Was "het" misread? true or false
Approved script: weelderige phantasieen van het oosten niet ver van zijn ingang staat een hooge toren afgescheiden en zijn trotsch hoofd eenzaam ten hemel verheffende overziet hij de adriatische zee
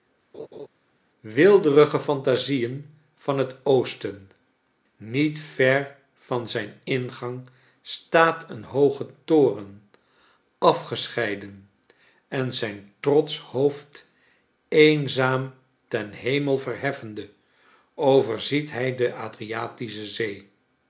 false